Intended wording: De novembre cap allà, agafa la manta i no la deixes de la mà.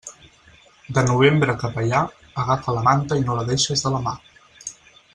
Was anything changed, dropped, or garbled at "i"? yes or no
no